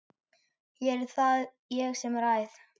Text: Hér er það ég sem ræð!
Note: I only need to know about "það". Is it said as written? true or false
true